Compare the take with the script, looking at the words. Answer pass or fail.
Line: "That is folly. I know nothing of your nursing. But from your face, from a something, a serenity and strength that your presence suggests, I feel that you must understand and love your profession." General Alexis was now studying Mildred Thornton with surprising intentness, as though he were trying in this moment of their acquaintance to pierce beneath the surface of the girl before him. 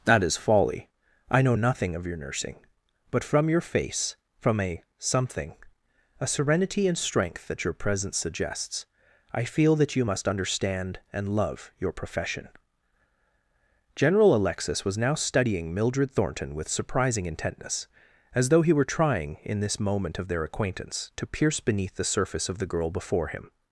pass